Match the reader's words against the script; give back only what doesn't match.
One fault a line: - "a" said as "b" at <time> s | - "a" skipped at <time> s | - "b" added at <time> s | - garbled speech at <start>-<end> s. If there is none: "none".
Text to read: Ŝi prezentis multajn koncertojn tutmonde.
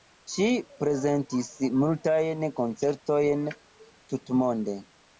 none